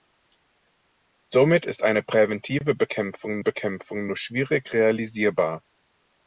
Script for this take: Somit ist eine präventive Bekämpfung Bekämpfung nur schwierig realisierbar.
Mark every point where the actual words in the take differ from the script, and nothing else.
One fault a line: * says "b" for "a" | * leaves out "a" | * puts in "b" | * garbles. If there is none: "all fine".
all fine